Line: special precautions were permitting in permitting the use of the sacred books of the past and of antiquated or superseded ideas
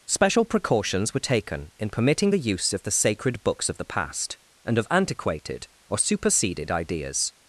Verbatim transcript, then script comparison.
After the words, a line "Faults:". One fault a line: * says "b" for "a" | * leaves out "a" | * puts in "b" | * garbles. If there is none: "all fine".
special precautions were taken in permitting the use of the sacred books of the past and of antiquated or superseded ideas
Faults:
* says "taken" for "permitting"